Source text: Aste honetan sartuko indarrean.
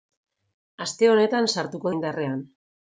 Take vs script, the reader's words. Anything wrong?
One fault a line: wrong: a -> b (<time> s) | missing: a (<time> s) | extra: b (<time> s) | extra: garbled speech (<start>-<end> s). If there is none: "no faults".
no faults